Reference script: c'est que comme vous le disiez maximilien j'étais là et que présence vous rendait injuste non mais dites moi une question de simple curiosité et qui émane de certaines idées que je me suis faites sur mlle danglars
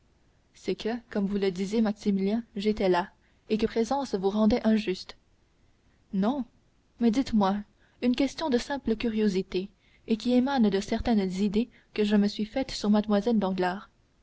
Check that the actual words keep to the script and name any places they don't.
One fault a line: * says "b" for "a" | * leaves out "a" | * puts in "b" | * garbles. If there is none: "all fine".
all fine